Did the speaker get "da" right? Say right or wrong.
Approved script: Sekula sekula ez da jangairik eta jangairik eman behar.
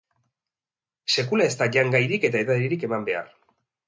right